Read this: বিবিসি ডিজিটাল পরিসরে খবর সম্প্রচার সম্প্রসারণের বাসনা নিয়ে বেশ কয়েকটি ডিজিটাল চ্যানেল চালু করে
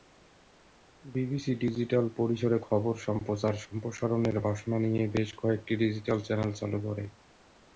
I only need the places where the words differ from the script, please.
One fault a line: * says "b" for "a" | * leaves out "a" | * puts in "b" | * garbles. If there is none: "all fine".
all fine